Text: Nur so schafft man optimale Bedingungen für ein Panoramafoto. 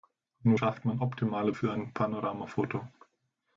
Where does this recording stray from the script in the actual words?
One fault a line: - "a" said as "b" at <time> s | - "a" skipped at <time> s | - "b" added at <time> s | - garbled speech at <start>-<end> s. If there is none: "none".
- "so" skipped at 0.6 s
- "Bedingungen" skipped at 1.5 s